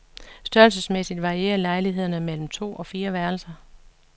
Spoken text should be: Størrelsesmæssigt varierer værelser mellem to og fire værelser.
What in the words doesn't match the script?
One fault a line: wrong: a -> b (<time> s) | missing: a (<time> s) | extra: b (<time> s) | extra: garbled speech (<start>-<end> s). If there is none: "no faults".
wrong: værelser -> lejlighederne (1.6 s)